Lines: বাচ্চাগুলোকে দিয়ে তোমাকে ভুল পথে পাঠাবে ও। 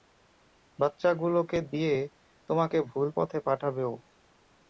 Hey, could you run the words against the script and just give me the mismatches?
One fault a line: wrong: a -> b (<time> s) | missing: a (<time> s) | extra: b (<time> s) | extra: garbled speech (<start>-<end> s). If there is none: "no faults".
no faults